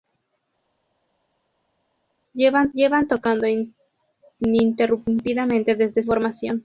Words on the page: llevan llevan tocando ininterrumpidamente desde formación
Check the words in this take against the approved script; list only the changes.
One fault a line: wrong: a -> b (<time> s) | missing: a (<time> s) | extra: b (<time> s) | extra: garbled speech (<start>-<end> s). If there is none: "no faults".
no faults